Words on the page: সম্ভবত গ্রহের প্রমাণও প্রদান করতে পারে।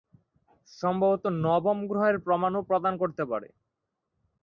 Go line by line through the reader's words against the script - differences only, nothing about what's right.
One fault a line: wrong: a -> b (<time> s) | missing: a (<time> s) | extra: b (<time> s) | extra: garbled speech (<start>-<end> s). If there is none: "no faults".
extra: নবম (1.4 s)